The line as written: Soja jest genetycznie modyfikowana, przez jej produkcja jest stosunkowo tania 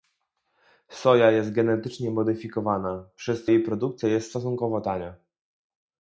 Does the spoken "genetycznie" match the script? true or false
true